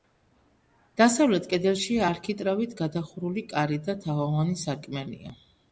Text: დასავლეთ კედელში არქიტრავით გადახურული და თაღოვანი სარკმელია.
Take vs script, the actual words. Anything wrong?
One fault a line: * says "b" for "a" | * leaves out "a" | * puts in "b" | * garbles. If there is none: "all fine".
* puts in "კარი"